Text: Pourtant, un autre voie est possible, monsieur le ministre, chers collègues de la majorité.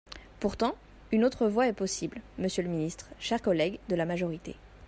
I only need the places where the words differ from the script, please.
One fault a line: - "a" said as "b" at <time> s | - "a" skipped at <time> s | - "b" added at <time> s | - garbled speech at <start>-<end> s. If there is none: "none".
- "un" said as "une" at 1.1 s